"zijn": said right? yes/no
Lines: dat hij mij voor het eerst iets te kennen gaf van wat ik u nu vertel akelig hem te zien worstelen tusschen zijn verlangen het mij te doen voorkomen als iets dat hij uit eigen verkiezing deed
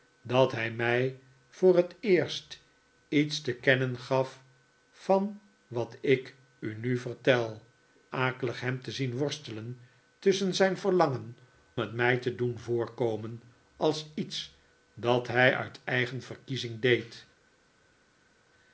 yes